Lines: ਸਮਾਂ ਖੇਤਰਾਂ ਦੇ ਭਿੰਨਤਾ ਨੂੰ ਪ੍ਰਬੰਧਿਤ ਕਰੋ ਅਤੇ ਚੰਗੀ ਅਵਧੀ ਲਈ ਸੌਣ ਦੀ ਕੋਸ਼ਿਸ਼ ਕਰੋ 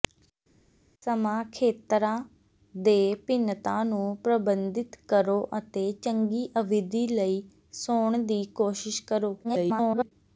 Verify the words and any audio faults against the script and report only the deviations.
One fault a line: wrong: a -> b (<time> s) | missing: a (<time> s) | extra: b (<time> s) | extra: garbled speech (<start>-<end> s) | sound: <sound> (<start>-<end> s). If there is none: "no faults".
extra: garbled speech (9.4-10.1 s)